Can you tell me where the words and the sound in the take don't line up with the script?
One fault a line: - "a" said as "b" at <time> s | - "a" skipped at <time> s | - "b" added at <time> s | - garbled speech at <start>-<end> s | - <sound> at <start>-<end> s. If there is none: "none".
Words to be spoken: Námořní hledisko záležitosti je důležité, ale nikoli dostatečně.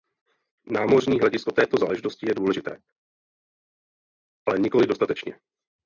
- "této" added at 1.5 s